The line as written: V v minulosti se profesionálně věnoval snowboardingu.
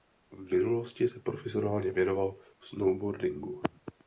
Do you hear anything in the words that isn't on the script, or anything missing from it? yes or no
yes